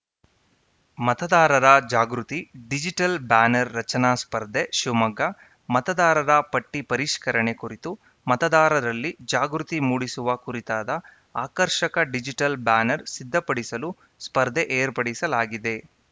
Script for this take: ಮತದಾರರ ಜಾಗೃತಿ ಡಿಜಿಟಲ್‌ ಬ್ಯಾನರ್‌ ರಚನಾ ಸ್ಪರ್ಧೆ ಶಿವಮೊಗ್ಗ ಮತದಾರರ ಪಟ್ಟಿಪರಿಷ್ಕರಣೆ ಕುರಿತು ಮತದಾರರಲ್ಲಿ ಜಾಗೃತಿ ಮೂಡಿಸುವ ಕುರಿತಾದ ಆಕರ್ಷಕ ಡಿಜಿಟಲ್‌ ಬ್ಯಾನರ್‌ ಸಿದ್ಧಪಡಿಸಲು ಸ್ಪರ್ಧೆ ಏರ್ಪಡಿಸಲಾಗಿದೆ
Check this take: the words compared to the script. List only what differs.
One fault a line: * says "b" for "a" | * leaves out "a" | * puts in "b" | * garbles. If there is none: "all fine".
all fine